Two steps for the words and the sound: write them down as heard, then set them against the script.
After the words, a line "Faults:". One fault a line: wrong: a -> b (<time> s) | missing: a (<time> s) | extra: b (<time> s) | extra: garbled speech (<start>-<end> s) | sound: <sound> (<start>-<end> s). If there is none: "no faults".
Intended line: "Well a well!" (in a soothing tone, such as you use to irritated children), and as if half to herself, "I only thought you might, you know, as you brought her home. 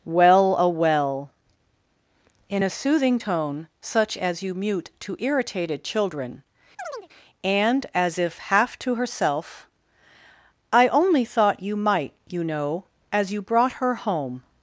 "Well a well!" (in a soothing tone, such as you mute to irritated children), and as if half to herself, "I only thought you might, you know, as you brought her home.
Faults:
wrong: use -> mute (4.5 s)
sound: chirp (6.8-7.1 s)